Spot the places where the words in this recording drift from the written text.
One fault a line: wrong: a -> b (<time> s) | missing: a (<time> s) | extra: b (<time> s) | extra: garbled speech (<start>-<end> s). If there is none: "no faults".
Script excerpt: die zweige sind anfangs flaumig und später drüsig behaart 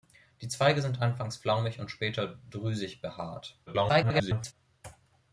extra: garbled speech (3.7-4.5 s)